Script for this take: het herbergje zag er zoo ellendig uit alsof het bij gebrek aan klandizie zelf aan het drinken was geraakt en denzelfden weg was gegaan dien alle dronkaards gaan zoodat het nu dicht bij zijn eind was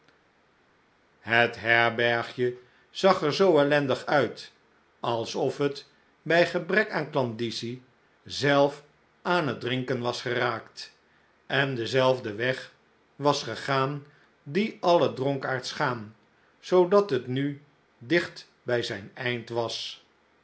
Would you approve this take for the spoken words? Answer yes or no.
yes